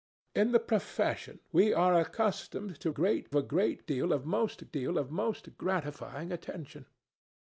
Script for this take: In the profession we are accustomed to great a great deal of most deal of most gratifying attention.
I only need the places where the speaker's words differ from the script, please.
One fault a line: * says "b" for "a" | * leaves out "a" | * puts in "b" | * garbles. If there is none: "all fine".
all fine